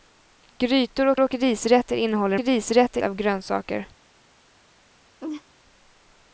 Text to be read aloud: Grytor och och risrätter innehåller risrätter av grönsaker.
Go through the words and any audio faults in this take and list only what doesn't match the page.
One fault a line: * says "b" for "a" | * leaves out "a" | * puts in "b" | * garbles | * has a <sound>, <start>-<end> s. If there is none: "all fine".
* has a laugh, 5.2-5.4 s